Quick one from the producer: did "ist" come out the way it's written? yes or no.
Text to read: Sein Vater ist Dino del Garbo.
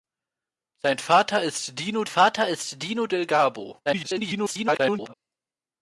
yes